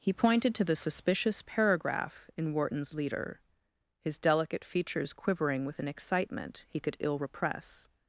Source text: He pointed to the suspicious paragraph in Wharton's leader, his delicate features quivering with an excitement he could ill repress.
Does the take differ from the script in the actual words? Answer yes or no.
no